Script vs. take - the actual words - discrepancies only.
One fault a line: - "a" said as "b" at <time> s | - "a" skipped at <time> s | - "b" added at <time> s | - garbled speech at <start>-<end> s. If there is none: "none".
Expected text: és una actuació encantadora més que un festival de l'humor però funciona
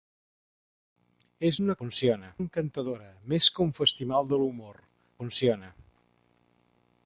- "actuació" said as "funciona" at 1.8 s
- "però" skipped at 4.8 s